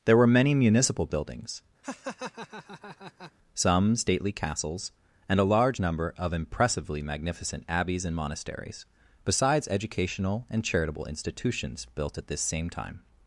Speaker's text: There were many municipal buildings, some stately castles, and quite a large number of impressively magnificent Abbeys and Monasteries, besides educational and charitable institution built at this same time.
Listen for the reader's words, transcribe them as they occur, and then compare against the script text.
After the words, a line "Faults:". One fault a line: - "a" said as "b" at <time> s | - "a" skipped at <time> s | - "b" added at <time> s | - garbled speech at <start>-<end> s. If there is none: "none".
There were many municipal buildings, some stately castles, and a large number of impressively magnificent Abbeys and Monasteries, besides educational and charitable institutions built at this same time.
Faults:
- "quite" skipped at 5.4 s
- "institution" said as "institutions" at 11.0 s